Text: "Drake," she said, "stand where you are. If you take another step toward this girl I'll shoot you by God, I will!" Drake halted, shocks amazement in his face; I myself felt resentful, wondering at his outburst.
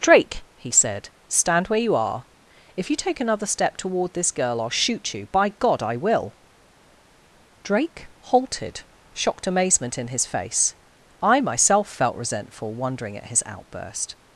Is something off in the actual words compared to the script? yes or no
yes